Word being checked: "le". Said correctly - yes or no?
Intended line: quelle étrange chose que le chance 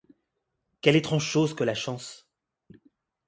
no